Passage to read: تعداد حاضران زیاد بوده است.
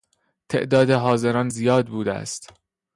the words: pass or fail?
pass